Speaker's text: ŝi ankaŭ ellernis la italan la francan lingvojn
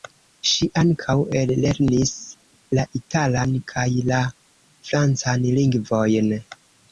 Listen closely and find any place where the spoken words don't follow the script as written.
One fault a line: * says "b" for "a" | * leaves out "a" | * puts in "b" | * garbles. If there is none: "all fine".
* puts in "kaj"